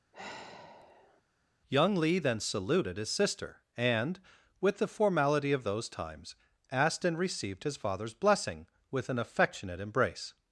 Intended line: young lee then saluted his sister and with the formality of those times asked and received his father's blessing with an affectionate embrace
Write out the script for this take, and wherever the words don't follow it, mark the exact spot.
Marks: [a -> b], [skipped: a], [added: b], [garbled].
young lee then saluted his sister and with the formality of those times asked and received his father's blessing with an affectionate embrace